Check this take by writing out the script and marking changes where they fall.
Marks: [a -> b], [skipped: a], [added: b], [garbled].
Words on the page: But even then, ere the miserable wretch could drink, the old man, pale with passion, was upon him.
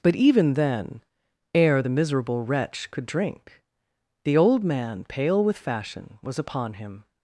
But even then, ere the miserable wretch could drink, the old man, pale with [passion, -> fashion] was upon him.